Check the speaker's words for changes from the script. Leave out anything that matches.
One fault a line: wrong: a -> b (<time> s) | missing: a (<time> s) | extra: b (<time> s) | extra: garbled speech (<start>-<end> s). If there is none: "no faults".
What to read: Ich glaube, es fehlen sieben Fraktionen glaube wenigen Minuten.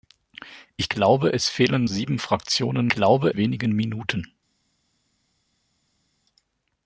no faults